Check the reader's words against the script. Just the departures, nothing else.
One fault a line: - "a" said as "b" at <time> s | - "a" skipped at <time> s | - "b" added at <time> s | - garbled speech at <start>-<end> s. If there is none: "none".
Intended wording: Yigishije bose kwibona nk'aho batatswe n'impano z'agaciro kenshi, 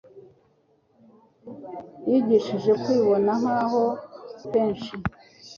- "bose" skipped at 2.7 s
- "batatswe n'impano z'agaciro" skipped at 3.8 s